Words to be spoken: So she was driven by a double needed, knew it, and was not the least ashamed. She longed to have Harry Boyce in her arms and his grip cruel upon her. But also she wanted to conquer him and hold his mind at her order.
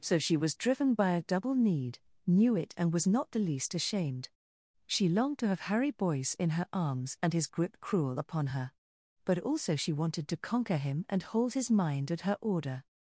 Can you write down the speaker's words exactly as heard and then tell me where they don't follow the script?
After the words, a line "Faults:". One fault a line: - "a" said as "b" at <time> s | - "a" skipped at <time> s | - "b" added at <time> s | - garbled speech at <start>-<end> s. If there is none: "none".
So she was driven by a double need, knew it, and was not the least ashamed. She longed to have Harry Boyce in her arms and his grip cruel upon her. But also she wanted to conquer him and hold his mind at her order.
Faults:
- "needed" said as "need" at 1.5 s